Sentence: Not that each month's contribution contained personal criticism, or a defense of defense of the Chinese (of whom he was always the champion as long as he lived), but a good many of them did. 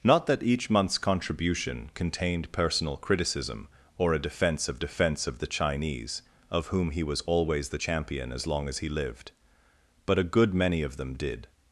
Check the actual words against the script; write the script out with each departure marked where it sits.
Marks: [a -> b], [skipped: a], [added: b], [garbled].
Not that each month's contribution contained personal criticism, or a defense of defense of the Chinese (of whom he was always the champion as long as he lived), but a good many of them did.